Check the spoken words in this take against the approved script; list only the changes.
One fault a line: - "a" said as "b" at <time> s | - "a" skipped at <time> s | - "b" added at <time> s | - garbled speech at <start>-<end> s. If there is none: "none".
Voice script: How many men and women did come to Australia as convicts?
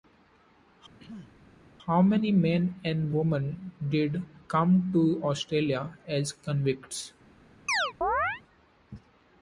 none